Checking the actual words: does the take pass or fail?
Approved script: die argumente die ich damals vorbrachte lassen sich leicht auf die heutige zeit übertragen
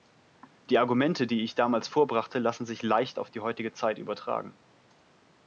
pass